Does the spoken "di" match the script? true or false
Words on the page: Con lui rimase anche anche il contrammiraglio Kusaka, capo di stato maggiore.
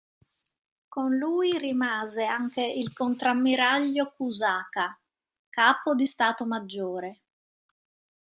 true